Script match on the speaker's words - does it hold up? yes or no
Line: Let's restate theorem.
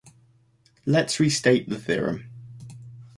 no